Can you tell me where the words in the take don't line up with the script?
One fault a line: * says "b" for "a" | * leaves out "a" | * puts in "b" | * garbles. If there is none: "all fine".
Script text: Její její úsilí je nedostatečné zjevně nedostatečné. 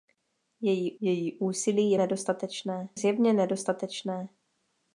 all fine